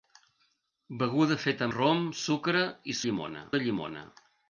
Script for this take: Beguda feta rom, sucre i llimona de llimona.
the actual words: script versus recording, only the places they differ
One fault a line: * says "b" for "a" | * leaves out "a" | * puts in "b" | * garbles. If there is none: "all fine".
all fine